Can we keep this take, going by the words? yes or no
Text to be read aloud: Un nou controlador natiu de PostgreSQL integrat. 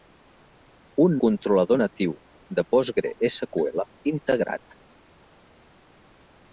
no